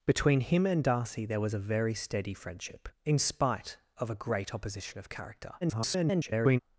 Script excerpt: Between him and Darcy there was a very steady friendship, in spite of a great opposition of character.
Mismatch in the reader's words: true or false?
true